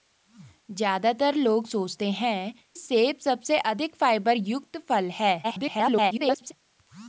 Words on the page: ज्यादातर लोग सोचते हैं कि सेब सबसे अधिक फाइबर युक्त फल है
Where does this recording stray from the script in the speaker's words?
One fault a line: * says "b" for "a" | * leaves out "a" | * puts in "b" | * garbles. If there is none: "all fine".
* leaves out "कि"
* garbles